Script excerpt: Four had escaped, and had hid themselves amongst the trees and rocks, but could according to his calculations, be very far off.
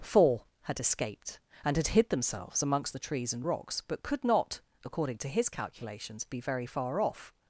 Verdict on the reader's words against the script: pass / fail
fail